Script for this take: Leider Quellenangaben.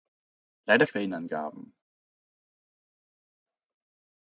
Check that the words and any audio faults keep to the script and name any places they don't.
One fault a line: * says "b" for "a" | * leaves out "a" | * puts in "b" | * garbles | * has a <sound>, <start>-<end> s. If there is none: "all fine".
all fine